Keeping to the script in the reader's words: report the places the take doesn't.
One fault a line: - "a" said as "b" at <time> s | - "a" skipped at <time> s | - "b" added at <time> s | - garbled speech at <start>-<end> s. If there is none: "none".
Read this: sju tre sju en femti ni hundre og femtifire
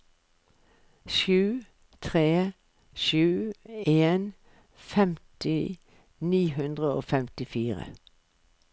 none